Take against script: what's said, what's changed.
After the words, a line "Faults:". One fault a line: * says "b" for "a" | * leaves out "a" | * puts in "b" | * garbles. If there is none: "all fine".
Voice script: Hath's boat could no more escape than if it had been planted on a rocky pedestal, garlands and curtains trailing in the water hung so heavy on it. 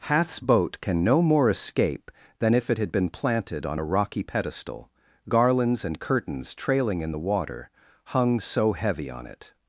Hath's boat can no more escape than if it had been planted on a rocky pedestal, garlands and curtains trailing in the water hung so heavy on it.
Faults:
* says "can" for "could"